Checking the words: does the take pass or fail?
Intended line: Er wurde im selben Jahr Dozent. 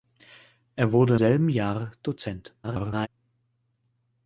fail